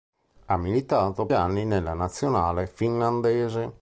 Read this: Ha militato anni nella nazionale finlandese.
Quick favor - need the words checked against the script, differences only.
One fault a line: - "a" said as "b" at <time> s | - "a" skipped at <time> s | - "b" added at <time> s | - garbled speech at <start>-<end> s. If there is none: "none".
none